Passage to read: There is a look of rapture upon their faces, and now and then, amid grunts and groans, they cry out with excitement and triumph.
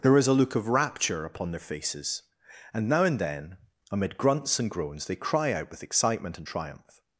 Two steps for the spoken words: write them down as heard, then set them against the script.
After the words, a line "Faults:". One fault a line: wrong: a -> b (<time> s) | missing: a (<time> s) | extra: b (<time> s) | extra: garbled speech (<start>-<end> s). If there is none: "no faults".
There is a look of rapture upon their faces, and now and then, amid grunts and groans, they cry out with excitement and triumph.
Faults:
no faults